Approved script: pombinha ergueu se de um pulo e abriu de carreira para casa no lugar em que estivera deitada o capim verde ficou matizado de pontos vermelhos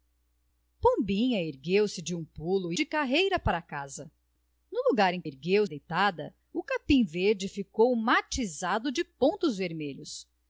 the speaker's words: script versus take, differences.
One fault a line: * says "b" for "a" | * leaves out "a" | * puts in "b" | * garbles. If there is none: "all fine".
* leaves out "e abriu"
* says "ergueu" for "estivera"